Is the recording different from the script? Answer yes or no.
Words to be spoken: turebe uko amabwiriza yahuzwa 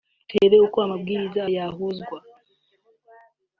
no